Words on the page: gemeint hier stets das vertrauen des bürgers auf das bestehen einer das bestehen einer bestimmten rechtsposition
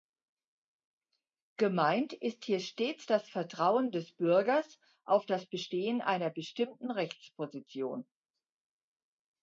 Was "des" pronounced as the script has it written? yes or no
yes